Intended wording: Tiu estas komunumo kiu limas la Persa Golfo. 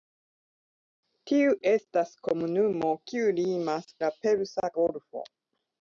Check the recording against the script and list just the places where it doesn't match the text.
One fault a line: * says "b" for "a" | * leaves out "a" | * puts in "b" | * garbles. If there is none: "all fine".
all fine